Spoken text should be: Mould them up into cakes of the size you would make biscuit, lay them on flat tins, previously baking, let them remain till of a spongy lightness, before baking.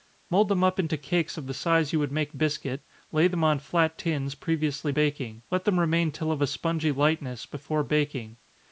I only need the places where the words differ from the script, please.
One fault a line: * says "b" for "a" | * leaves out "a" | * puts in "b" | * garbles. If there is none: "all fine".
all fine